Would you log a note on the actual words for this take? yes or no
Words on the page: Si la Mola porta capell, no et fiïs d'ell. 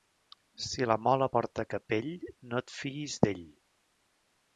no